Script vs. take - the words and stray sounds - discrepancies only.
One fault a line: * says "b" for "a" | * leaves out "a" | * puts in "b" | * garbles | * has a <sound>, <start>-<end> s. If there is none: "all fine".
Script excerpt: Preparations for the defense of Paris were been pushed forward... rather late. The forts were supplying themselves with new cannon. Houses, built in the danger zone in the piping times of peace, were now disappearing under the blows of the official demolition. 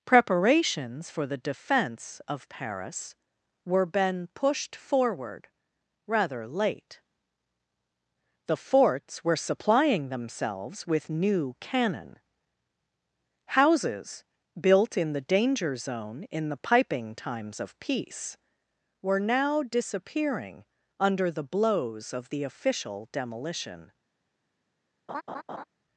* has a laugh, 25.1-25.6 s